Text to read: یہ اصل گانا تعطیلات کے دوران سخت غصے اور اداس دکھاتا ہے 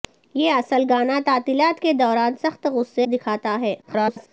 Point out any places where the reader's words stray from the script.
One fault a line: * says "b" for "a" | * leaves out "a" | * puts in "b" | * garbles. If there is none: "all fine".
* leaves out "اور اداس"
* garbles